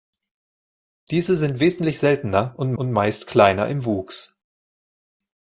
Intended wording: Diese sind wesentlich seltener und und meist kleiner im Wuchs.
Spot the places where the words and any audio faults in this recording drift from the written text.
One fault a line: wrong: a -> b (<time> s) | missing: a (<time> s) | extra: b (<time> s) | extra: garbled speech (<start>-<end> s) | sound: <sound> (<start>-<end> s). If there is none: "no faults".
no faults